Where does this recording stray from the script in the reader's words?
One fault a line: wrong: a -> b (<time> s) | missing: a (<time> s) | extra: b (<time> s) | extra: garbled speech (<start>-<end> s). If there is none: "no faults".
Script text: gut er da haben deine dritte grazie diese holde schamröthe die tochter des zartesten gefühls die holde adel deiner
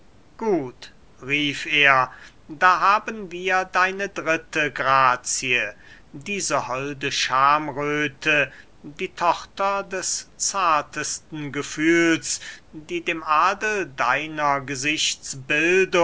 extra: rief (1.2 s)
extra: wir (3.3 s)
wrong: holde -> dem (13.0 s)